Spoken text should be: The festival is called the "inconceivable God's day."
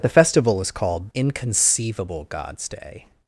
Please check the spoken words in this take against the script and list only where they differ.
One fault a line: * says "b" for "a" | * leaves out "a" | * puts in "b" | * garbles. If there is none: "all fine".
* leaves out "the"